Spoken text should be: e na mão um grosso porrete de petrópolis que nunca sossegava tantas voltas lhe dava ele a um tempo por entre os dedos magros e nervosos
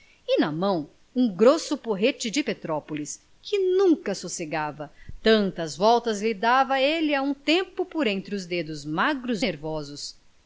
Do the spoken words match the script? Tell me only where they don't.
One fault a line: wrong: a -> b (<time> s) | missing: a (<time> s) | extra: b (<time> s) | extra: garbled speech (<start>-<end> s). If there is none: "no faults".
missing: e (9.4 s)